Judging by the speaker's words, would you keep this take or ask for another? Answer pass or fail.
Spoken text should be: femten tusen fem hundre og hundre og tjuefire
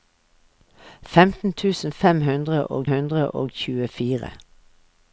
pass